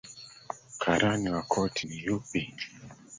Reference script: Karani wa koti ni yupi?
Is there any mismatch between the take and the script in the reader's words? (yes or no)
no